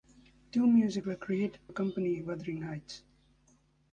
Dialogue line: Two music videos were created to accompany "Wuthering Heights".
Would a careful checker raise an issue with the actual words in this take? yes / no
yes